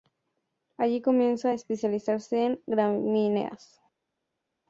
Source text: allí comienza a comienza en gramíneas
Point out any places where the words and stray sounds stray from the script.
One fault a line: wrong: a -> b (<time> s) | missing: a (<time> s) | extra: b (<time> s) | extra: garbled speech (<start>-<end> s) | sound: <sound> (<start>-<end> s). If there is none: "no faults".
wrong: comienza -> especializarse (1.5 s)